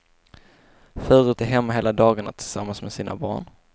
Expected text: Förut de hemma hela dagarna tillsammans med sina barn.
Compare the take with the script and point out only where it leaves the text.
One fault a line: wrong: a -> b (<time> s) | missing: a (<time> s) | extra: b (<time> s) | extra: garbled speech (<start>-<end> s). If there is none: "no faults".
no faults